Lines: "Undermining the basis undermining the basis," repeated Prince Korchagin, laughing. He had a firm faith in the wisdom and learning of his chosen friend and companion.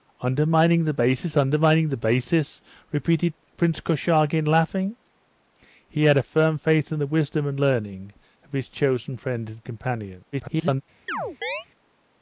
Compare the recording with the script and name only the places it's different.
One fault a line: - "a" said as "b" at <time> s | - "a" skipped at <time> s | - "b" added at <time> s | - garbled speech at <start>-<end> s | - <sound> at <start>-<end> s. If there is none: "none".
- garbled speech at 10.3-10.8 s
- chirp at 11.1-11.7 s